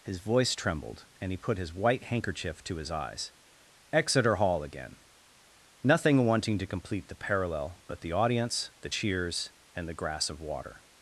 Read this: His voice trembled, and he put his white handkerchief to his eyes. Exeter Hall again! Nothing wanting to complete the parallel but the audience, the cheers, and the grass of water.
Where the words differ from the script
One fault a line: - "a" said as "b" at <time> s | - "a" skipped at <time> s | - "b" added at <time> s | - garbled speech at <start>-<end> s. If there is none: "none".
none